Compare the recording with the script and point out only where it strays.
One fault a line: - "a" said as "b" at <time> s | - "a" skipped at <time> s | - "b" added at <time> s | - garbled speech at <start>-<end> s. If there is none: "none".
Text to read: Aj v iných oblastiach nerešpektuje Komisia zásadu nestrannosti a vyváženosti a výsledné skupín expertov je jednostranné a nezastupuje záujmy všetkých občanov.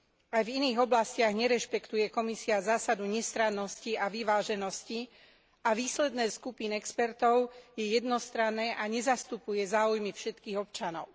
none